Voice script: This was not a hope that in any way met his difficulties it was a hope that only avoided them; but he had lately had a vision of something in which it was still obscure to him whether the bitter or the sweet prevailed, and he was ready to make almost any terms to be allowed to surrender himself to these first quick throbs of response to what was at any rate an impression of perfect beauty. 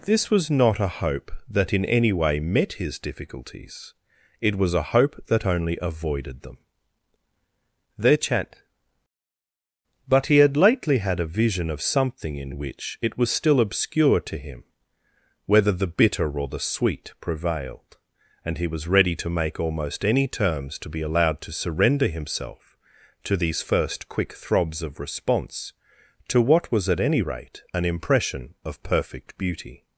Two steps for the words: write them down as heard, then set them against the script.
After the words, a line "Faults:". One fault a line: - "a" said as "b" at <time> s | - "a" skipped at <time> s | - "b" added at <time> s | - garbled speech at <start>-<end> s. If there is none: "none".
This was not a hope that in any way met his difficulties it was a hope that only avoided them; their chat but he had lately had a vision of something in which it was still obscure to him whether the bitter or the sweet prevailed, and he was ready to make almost any terms to be allowed to surrender himself to these first quick throbs of response to what was at any rate an impression of perfect beauty.
Faults:
- "their chat" added at 8.0 s